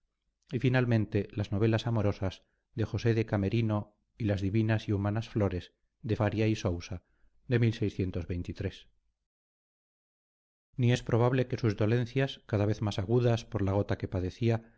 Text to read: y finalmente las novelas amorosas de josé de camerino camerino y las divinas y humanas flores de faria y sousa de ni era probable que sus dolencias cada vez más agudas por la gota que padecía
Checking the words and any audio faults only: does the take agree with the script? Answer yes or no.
no